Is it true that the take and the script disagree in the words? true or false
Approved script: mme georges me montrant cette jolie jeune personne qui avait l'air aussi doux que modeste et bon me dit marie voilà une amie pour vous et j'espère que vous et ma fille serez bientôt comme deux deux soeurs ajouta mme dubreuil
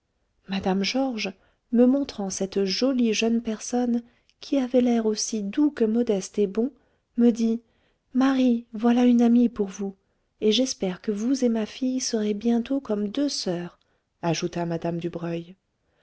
true